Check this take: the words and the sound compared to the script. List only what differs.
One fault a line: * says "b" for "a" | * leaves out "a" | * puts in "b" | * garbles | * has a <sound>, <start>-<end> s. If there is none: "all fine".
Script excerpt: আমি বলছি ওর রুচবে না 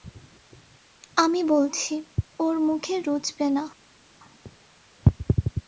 * puts in "মুখে"